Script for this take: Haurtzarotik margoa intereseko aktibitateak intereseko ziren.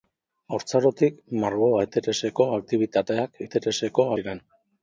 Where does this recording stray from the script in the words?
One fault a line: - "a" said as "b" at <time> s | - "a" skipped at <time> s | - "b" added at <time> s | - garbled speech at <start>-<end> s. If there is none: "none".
none